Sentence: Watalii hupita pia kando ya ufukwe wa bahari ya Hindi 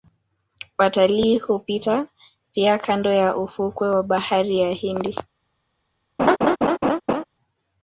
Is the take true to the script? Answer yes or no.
yes